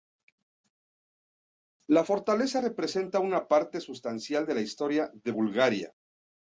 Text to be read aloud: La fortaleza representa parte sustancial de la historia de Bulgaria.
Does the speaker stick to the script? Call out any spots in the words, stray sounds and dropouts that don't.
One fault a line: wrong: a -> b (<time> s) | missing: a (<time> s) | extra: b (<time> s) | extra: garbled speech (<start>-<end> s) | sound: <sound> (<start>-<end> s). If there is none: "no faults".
extra: una (3.2 s)